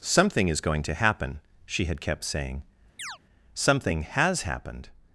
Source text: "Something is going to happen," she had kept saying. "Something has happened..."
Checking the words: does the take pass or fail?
pass